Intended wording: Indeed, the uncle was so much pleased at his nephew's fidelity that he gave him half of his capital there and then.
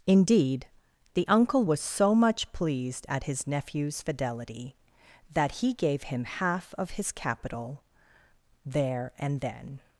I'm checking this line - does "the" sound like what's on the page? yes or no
yes